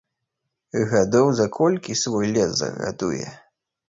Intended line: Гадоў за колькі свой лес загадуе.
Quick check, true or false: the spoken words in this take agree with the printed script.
true